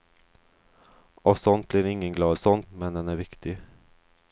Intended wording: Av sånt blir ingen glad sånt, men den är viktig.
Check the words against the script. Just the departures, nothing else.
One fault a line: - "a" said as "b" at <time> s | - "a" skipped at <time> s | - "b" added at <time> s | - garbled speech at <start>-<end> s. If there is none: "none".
none